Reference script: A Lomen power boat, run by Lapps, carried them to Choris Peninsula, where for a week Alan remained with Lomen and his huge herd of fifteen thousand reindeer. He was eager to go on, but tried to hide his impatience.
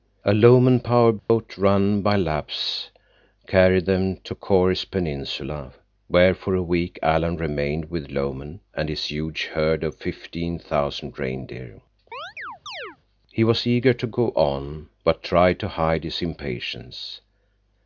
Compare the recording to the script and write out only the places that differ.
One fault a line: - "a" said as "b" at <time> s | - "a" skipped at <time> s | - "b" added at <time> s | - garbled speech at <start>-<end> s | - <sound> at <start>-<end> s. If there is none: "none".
- dropout at 1.2-1.3 s
- chirp at 12.1-13.0 s